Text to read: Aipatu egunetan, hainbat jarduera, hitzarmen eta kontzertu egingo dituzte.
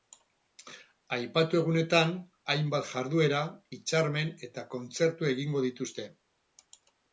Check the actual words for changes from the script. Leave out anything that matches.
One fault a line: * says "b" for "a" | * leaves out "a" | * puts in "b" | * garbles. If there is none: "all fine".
all fine